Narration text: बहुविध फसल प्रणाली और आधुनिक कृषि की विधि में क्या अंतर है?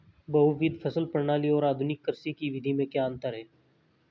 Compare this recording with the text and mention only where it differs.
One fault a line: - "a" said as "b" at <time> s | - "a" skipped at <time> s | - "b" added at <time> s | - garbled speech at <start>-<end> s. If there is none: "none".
none